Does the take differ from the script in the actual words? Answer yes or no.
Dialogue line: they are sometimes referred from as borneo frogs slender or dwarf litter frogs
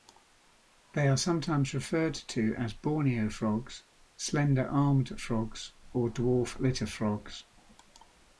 yes